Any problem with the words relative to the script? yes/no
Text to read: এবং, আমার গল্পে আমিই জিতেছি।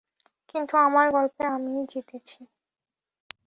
yes